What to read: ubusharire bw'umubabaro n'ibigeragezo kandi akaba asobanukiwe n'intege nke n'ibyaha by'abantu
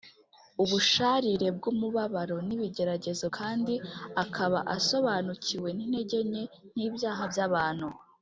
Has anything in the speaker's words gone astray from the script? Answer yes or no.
no